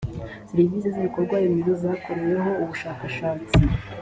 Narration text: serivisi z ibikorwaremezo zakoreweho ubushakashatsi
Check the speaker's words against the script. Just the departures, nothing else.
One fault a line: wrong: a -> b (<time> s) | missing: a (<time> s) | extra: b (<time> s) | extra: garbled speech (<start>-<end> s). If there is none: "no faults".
no faults